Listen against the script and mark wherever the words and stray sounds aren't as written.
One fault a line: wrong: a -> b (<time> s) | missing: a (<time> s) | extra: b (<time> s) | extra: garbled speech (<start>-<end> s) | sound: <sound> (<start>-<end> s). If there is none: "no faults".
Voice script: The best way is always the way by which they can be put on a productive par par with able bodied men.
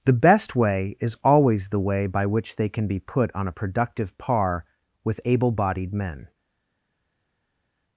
missing: par (4.6 s)